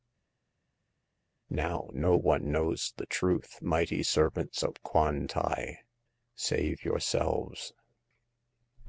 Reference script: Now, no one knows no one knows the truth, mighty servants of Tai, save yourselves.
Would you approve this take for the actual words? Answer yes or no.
no